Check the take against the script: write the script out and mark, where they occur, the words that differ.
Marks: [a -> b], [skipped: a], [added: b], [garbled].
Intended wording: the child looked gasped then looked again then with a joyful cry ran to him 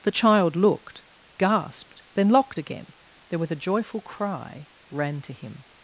the child looked gasped then [looked -> locked] again then with a joyful cry ran to him